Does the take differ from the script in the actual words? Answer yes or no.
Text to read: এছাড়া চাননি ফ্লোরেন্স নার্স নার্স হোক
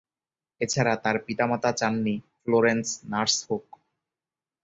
yes